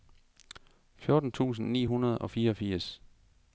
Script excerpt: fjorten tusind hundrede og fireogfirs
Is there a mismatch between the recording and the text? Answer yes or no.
yes